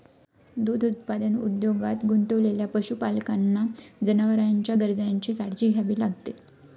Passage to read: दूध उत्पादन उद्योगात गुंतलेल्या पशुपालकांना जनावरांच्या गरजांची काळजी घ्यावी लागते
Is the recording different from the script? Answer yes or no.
no